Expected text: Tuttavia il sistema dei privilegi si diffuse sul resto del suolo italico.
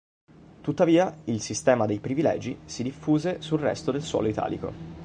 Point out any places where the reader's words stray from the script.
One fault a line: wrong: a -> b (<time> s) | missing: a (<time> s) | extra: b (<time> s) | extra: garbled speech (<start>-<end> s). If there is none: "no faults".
no faults